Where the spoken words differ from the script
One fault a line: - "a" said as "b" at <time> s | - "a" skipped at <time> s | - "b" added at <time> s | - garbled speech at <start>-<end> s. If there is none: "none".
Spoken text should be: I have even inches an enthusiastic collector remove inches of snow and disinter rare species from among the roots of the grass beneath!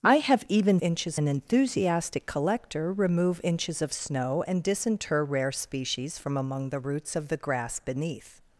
none